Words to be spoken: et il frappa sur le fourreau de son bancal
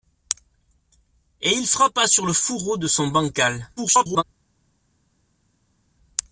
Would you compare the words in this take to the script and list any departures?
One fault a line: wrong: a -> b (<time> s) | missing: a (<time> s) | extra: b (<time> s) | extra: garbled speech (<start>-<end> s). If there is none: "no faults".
extra: garbled speech (3.8-4.2 s)